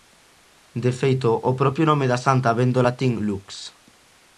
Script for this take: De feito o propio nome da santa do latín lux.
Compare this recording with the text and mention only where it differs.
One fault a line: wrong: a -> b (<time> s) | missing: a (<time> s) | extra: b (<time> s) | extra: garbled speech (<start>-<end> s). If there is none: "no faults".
extra: vén (2.6 s)